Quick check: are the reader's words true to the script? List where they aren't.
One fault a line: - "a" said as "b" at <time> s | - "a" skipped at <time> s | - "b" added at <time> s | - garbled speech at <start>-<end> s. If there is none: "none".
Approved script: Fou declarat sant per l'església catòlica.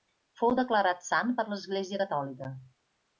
none